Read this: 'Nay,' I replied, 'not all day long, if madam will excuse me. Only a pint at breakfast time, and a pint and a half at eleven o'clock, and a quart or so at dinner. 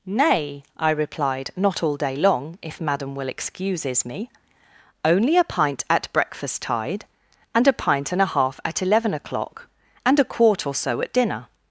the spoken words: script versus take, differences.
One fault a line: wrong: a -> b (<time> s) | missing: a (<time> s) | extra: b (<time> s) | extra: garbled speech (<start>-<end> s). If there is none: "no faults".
wrong: excuse -> excuses (3.3 s)
wrong: time -> tide (6.6 s)